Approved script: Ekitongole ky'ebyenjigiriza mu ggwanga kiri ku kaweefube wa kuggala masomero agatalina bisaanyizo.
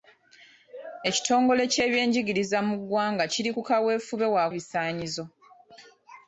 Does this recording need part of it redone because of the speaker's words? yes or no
yes